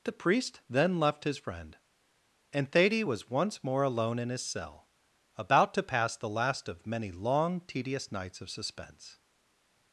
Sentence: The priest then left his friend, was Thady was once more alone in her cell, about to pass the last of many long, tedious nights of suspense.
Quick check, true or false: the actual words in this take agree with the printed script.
false